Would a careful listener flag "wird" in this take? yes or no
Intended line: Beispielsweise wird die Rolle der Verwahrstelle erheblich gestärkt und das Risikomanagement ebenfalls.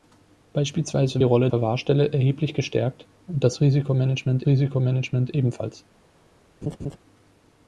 yes